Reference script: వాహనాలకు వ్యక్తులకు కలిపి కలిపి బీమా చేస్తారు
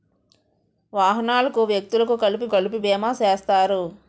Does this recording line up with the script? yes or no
yes